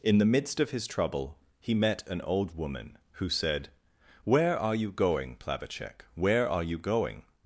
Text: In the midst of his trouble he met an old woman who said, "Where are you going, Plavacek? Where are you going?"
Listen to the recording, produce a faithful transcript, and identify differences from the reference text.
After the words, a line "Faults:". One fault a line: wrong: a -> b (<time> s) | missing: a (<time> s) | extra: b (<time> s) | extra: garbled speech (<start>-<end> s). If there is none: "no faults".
In the midst of his trouble he met an old woman who said, "Where are you going, Plavacek? Where are you going?"
Faults:
no faults